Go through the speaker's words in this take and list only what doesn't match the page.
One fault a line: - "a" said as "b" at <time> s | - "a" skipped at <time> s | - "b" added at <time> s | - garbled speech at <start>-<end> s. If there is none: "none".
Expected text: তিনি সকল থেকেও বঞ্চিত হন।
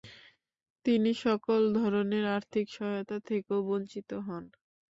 - "ধরনের আর্থিক সহায়তা" added at 1.8 s